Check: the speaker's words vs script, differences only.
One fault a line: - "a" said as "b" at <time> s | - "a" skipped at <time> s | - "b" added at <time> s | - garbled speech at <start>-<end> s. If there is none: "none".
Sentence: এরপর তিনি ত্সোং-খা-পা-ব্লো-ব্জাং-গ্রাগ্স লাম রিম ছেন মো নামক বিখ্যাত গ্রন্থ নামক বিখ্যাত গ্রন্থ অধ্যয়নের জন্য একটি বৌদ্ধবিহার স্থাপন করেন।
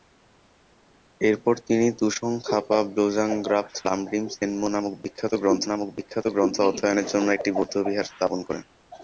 none